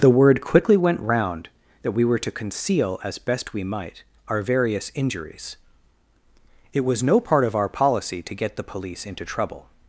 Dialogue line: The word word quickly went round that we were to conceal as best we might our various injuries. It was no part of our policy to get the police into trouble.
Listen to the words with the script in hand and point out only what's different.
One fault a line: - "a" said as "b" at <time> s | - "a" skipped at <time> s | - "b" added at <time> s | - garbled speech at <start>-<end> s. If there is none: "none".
- "word" skipped at 0.4 s